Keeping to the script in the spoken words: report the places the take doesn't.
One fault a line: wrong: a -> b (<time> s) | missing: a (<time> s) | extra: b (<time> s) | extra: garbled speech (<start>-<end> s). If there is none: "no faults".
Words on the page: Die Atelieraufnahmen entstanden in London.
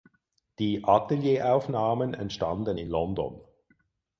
no faults